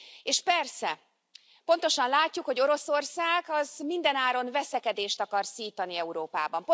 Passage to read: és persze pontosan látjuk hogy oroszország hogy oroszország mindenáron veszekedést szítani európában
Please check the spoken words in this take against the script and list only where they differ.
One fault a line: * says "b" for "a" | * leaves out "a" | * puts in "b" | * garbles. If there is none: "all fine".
* leaves out "hogy oroszország"
* puts in "akar"